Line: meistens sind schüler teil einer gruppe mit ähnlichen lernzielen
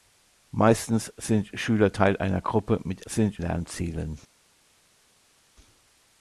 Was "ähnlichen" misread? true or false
true